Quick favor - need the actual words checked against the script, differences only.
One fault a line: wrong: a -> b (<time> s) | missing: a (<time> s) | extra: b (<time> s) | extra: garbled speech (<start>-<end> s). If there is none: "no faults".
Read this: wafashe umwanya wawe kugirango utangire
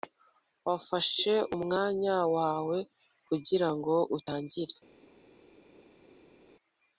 no faults